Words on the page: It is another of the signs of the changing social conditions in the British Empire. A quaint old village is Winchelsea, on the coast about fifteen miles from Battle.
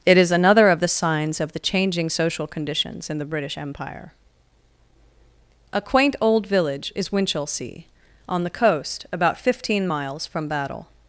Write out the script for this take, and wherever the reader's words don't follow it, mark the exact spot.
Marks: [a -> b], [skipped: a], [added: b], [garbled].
It is another of the signs of the changing social conditions in the British Empire. A quaint old village is Winchelsea, on the coast about fifteen miles from Battle.